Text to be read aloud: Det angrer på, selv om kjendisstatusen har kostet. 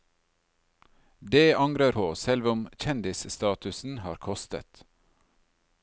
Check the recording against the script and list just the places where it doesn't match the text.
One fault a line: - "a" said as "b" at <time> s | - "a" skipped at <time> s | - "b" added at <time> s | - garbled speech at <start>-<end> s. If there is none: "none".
none